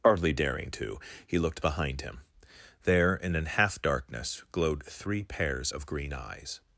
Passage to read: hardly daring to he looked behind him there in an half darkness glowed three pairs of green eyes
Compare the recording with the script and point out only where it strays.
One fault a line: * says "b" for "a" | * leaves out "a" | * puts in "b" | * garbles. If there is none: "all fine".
all fine